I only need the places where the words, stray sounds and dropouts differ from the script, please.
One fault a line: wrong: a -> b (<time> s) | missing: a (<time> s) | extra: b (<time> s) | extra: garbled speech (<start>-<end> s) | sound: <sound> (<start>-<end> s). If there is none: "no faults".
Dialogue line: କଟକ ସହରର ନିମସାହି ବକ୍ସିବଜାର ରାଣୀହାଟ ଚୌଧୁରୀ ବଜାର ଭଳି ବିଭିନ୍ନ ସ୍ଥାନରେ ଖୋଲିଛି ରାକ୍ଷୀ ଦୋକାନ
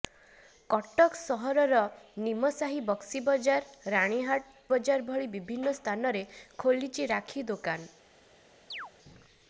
missing: ଚୌଧୁରୀ (4.6 s)
sound: chirp (8.7-8.9 s)